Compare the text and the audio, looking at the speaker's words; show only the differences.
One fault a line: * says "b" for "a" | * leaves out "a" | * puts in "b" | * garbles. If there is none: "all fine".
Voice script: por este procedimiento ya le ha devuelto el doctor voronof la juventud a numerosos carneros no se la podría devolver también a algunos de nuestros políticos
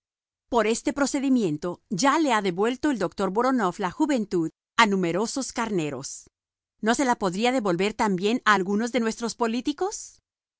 all fine